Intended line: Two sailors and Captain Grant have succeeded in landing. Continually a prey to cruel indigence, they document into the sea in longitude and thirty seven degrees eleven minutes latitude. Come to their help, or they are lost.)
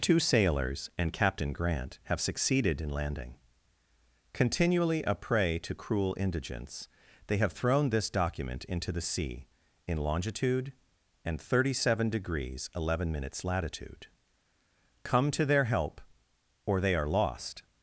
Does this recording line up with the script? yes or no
no